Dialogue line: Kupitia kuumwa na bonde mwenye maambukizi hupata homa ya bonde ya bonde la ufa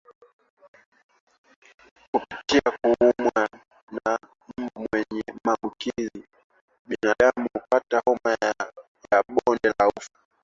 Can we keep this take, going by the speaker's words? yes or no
no